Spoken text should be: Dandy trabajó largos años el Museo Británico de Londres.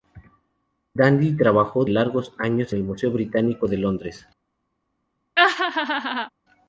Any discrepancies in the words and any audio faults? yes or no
yes